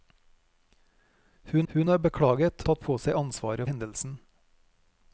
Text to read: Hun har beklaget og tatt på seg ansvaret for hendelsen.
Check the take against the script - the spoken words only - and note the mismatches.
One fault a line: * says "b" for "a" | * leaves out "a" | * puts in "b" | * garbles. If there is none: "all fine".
* puts in "hun"
* leaves out "og"
* leaves out "for"